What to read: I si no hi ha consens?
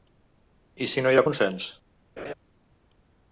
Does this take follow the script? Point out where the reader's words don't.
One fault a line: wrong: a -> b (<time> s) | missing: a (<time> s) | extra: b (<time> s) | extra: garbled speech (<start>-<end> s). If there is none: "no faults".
no faults